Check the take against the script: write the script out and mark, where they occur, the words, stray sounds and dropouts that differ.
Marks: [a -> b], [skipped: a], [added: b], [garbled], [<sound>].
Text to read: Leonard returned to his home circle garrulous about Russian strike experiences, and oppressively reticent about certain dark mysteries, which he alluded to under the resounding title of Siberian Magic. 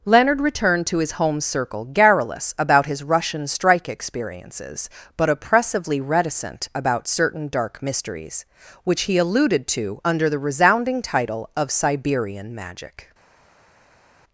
Leonard returned to his home circle garrulous about [added: his] Russian strike experiences, [and -> but] oppressively reticent about certain dark mysteries, which he alluded to under the resounding title of Siberian Magic.